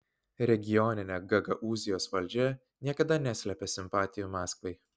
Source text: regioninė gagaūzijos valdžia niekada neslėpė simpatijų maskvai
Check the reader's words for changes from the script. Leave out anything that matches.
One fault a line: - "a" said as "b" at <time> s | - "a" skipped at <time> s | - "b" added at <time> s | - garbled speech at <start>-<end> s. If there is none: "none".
none